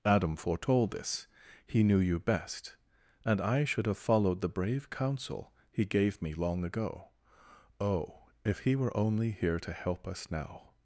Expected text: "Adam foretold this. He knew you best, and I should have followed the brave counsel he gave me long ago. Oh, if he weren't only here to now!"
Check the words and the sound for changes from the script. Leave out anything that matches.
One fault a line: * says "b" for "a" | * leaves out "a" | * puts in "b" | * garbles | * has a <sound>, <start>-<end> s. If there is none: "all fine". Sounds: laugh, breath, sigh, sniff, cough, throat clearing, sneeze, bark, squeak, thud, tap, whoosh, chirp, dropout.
* says "were" for "weren't"
* puts in "help us"